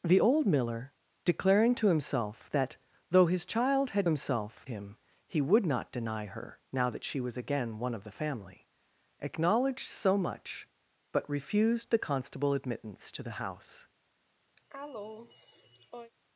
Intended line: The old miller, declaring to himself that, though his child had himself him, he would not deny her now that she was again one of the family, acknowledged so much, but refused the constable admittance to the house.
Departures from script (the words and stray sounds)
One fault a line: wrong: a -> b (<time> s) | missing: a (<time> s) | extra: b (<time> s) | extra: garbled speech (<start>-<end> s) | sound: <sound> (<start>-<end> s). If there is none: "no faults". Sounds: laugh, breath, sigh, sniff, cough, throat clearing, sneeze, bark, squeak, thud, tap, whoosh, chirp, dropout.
sound: cough (14.6-16.1 s)